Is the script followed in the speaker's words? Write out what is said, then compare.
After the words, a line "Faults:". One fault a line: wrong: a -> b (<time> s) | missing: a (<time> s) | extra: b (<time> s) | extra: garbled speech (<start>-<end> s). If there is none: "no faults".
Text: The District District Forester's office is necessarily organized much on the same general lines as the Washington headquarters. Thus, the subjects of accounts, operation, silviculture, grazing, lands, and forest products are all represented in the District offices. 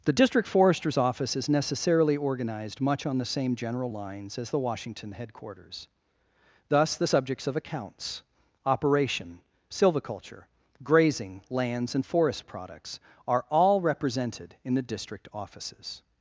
The District Forester's office is necessarily organized much on the same general lines as the Washington headquarters. Thus, the subjects of accounts, operation, silviculture, grazing, lands, and forest products are all represented in the District offices.
Faults:
missing: District (0.5 s)